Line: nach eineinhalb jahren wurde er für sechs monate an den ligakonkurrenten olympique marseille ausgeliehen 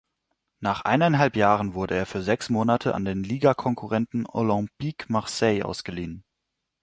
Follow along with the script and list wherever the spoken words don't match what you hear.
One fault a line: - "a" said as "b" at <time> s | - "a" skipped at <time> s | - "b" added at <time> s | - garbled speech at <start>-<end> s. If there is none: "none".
none